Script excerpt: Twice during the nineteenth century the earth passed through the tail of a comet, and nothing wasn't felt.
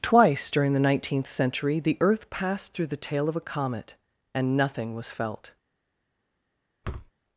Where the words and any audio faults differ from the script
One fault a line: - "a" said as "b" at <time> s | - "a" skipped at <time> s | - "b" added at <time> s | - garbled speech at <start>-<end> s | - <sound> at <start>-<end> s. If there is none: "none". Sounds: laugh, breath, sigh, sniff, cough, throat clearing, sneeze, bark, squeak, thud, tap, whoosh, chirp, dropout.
- "wasn't" said as "was" at 5.0 s
- thud at 6.8-7.1 s